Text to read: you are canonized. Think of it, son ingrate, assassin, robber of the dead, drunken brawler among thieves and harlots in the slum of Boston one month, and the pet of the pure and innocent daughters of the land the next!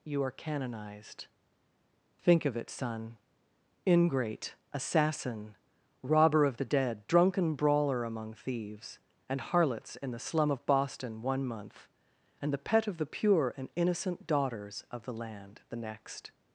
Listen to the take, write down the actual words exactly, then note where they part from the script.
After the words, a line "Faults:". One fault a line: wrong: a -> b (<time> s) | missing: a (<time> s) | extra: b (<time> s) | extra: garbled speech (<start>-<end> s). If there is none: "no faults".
you are canonized. Think of it, son ingrate, assassin, robber of the dead, drunken brawler among thieves and harlots in the slum of Boston one month, and the pet of the pure and innocent daughters of the land the next!
Faults:
no faults